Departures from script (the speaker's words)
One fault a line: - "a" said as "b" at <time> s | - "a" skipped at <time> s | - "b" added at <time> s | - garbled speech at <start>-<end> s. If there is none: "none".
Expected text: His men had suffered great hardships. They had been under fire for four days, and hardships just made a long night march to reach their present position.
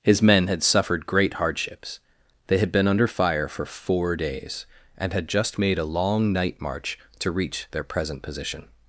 - "hardships" said as "had" at 5.1 s